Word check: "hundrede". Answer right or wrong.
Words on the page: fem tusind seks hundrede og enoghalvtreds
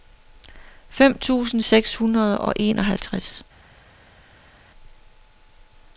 right